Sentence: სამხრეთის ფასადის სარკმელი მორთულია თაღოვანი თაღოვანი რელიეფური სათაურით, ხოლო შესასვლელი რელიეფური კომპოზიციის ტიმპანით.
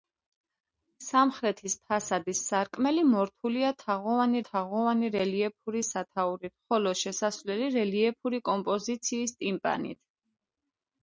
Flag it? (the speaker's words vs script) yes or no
no